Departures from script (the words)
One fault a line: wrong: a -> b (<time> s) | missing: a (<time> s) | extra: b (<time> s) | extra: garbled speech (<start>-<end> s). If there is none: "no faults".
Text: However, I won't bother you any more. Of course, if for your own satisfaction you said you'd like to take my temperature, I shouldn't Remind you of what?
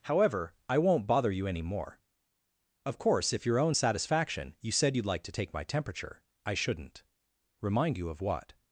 missing: for (3.5 s)